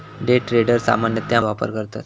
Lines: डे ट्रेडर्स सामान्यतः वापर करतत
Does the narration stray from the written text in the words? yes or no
no